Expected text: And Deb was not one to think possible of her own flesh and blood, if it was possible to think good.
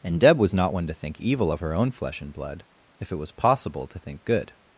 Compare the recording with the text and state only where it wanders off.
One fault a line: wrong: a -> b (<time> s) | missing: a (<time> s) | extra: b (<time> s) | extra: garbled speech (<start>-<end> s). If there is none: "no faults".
wrong: possible -> evil (1.2 s)